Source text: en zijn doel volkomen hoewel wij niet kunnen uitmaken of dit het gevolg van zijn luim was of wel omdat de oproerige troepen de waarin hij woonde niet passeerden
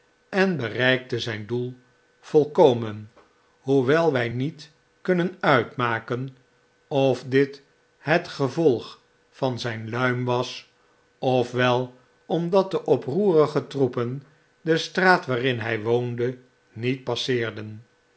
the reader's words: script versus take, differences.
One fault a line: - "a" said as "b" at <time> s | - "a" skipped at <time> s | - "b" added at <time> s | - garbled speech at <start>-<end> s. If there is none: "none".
- "bereikte" added at 0.6 s
- "straat" added at 14.8 s